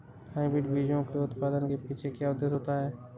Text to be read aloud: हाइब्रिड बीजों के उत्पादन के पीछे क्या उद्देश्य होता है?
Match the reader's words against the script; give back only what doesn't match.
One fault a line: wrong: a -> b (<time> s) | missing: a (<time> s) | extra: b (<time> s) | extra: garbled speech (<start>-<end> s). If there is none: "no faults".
no faults